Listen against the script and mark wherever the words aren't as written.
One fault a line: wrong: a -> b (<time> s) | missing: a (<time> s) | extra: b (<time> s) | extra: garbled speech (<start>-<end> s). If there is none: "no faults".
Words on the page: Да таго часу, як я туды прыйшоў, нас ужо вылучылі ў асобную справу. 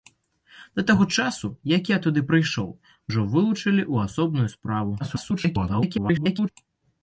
missing: нас (2.7 s)
extra: garbled speech (5.0-6.5 s)